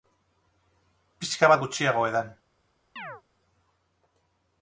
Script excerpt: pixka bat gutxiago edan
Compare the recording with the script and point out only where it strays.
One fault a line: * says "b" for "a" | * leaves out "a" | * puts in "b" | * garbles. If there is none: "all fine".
all fine